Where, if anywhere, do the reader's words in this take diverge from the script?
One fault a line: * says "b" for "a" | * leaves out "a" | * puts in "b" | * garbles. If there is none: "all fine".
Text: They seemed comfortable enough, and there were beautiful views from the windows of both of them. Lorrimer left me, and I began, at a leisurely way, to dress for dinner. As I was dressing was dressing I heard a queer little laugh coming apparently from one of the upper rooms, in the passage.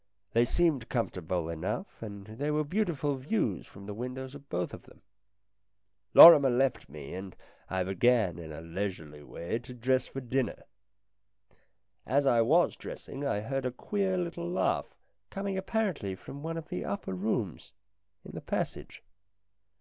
* says "in" for "at"
* leaves out "was dressing"